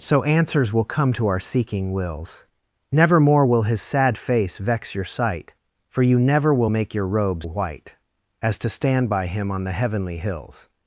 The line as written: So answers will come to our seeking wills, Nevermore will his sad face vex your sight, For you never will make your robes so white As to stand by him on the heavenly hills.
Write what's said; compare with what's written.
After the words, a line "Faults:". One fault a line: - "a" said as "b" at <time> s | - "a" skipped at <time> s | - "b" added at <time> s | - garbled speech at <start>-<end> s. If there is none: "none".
So answers will come to our seeking wills, Nevermore will his sad face vex your sight, For you never will make your robes white As to stand by him on the heavenly hills.
Faults:
- "so" skipped at 7.5 s